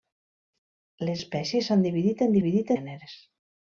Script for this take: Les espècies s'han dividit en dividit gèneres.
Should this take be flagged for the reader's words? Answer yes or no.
no